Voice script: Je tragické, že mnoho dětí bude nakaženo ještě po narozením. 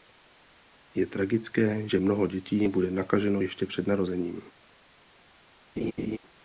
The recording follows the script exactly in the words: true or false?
false